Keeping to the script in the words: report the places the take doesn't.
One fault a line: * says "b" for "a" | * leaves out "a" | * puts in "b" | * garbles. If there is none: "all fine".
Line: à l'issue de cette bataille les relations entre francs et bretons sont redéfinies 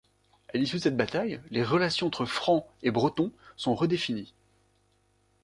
all fine